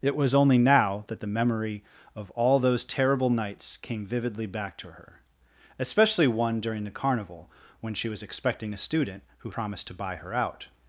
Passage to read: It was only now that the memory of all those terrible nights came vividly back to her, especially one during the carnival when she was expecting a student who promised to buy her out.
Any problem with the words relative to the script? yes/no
no